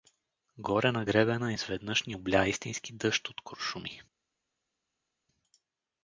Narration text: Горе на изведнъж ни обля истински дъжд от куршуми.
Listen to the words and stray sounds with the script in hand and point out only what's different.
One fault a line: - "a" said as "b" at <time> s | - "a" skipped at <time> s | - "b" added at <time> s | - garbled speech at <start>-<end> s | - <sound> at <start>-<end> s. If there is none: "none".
- "гребена" added at 1.0 s